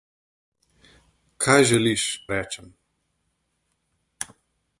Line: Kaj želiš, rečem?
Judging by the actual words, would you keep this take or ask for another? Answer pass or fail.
pass